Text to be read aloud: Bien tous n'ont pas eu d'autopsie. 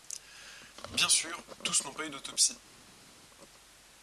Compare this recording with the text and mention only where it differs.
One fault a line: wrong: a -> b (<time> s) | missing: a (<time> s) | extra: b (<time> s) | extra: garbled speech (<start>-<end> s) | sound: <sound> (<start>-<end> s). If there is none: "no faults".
extra: sûr (1.1 s)